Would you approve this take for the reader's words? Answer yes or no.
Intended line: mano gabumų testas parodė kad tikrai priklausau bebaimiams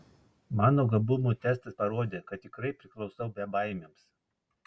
yes